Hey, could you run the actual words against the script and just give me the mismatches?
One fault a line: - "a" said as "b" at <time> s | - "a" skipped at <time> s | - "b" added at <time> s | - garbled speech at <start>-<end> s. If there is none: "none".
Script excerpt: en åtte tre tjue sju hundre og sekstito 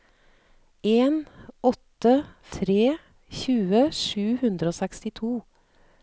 none